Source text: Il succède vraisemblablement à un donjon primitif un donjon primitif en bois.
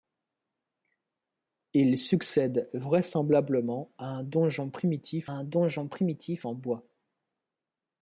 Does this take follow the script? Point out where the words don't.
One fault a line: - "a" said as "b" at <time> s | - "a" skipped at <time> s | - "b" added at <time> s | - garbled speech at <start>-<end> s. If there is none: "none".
none